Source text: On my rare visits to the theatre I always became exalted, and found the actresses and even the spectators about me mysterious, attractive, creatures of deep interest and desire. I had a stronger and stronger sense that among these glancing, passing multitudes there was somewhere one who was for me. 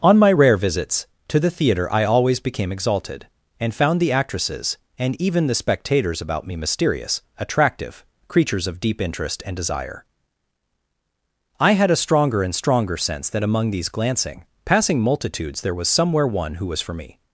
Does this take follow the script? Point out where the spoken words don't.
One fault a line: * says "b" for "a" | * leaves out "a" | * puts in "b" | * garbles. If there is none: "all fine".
all fine